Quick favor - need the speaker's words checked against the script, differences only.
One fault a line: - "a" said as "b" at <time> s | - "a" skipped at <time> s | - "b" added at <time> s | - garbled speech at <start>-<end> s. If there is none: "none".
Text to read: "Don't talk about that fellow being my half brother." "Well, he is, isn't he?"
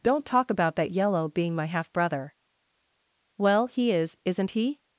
- "fellow" said as "yellow" at 0.9 s